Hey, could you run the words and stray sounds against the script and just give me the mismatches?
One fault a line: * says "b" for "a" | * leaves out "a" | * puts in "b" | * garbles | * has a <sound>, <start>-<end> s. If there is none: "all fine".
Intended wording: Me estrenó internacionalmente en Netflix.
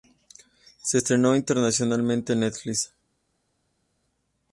* says "Se" for "Me"